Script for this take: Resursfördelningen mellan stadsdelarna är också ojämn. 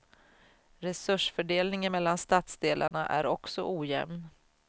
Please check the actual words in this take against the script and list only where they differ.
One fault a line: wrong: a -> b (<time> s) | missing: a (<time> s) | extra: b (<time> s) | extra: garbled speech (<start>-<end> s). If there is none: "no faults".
no faults